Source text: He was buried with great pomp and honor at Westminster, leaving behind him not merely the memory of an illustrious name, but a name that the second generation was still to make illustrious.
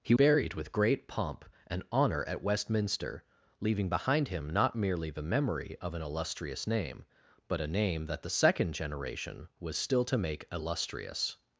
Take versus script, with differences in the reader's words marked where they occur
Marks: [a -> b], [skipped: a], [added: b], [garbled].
He [skipped: was] buried with great pomp and honor at Westminster, leaving behind him not merely the memory of an illustrious name, but a name that the second generation was still to make illustrious.